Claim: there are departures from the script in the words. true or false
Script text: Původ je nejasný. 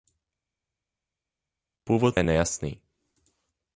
false